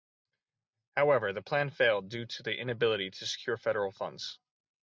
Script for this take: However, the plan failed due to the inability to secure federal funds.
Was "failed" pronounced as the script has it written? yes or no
yes